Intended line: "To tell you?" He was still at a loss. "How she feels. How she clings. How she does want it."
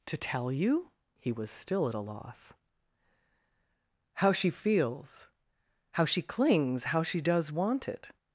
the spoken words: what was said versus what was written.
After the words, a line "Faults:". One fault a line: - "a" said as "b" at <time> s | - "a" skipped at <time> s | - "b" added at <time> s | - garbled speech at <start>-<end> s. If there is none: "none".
"To tell you?" He was still at a loss. "How she feels. How she clings. How she does want it."
Faults:
none